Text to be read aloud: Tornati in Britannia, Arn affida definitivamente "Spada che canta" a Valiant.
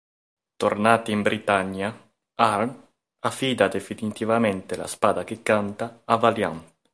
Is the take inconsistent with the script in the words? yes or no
yes